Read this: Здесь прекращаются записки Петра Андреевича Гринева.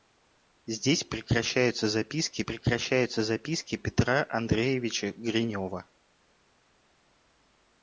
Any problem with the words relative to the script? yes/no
yes